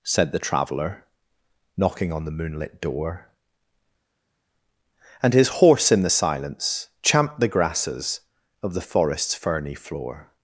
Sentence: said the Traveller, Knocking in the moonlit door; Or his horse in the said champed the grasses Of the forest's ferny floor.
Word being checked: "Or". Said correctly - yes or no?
no